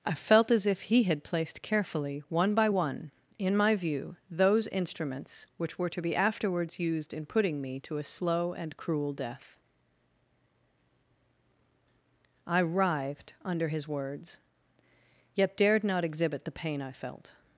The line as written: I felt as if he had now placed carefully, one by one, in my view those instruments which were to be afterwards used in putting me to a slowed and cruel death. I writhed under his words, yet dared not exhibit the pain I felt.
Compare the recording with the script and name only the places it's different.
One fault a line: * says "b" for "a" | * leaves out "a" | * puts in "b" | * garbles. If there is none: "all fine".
* leaves out "now"
* says "slow" for "slowed"